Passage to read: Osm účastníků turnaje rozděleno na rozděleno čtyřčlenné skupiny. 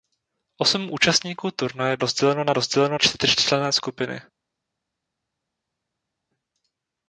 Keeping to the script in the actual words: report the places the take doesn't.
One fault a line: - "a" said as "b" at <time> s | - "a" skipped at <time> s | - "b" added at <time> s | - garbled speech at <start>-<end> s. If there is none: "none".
none